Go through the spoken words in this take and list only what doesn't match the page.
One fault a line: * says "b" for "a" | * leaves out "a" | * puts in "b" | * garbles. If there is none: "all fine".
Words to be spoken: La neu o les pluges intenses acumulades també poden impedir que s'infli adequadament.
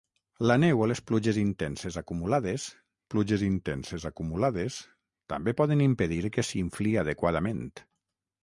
* puts in "pluges intenses acumulades"